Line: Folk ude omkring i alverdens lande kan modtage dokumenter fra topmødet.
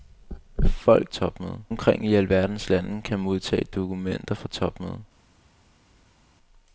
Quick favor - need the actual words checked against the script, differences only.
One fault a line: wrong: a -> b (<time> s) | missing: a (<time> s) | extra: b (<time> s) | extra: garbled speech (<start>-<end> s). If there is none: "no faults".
wrong: ude -> topmødet (1.1 s)